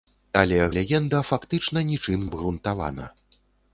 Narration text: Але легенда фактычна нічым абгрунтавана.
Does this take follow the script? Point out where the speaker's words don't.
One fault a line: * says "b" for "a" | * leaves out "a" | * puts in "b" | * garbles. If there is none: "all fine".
all fine